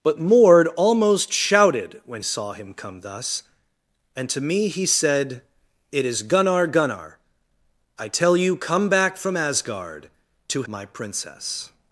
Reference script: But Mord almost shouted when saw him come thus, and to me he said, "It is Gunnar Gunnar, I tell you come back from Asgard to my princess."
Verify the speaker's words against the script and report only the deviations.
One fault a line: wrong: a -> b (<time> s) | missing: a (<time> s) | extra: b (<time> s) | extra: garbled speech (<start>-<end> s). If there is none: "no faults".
no faults